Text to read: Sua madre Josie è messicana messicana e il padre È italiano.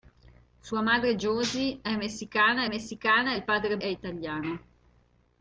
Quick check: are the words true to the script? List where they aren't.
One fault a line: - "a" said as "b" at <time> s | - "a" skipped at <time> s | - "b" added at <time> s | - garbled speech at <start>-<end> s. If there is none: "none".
none